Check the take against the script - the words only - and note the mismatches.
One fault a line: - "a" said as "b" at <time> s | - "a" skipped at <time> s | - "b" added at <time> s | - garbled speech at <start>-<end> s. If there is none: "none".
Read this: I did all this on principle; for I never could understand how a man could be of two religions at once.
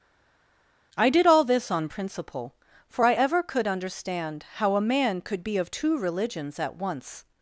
- "never" said as "ever" at 3.1 s